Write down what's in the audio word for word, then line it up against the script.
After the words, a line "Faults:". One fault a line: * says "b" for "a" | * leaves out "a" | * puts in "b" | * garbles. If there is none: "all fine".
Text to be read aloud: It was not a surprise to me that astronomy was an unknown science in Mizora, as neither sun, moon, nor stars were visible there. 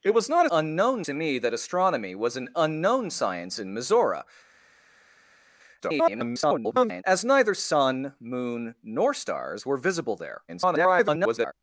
It was not a unknown to me that astronomy was an unknown science in Mizora, [garbled] as neither sun, moon, nor stars were visible there. [garbled]
Faults:
* says "unknown" for "surprise"
* garbles
* garbles